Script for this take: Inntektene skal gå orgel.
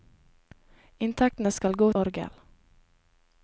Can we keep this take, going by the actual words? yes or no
yes